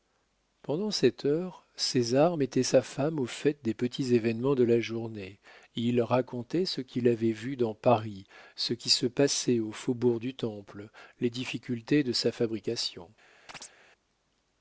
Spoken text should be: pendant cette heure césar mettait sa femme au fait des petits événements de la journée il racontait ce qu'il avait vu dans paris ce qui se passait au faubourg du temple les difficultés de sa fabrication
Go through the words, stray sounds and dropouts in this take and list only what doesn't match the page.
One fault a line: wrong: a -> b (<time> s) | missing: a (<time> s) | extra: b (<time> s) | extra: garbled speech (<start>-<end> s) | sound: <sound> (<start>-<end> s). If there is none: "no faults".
sound: chirp (13.5-13.7 s)